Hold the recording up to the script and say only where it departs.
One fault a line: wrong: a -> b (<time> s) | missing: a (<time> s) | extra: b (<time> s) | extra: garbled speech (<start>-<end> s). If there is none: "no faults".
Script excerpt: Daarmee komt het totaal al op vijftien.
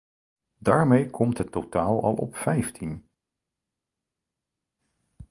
no faults